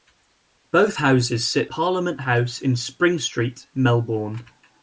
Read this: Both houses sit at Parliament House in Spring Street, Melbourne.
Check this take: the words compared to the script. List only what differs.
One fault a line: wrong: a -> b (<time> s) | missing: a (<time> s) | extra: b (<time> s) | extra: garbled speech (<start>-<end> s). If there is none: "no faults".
missing: at (1.7 s)